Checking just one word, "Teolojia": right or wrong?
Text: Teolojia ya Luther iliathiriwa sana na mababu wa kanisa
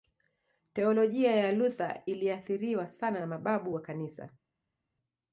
right